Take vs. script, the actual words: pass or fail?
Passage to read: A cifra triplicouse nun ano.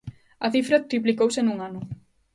pass